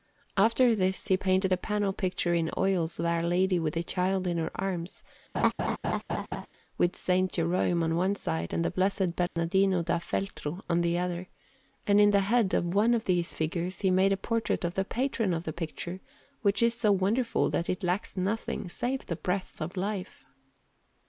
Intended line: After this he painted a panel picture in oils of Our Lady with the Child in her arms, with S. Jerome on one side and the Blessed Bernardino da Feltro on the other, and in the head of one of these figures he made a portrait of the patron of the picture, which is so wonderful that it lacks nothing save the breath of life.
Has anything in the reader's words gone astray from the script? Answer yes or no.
no